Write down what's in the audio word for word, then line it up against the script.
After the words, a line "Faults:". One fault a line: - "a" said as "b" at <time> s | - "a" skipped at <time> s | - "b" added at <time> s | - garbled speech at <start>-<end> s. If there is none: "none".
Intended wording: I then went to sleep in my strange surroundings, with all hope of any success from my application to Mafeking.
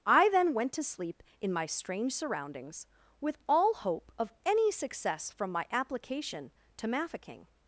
I then went to sleep in my strange surroundings, with all hope of any success from my application to Mafeking.
Faults:
none